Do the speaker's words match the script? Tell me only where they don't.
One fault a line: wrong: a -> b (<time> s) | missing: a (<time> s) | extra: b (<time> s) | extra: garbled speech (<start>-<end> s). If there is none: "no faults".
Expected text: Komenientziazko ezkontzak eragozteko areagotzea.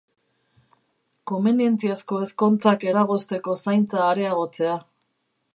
extra: zaintza (3.7 s)